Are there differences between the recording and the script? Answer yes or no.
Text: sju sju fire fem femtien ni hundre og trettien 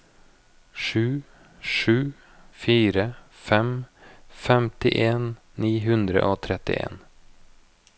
no